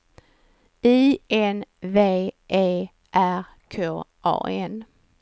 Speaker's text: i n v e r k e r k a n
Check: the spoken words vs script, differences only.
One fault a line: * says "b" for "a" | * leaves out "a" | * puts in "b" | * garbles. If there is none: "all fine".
* leaves out "e r k"